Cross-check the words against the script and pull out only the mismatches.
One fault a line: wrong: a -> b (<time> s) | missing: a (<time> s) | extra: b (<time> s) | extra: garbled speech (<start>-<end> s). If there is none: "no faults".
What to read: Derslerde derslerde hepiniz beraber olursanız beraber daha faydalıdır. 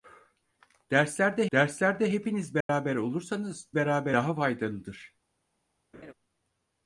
no faults